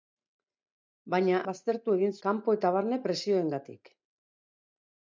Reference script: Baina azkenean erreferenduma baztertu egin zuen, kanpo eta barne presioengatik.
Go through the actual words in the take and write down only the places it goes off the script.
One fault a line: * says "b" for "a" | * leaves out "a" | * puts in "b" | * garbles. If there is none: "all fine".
* leaves out "azkenean erreferenduma"
* leaves out "zuen"